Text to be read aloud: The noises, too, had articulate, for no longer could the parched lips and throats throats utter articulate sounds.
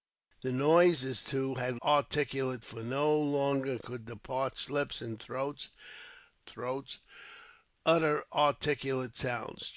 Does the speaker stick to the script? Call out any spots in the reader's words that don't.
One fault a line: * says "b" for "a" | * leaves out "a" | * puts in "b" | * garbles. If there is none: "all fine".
all fine